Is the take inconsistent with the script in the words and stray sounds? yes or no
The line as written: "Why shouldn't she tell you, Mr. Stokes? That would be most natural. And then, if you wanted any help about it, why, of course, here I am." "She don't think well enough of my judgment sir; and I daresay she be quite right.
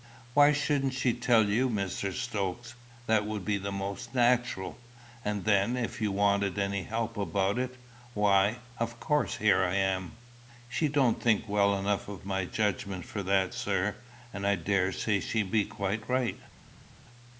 yes